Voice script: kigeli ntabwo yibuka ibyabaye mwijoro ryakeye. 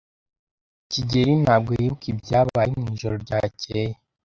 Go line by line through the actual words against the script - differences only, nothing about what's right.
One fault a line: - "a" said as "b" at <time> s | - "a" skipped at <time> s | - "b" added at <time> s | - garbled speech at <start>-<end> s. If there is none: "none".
none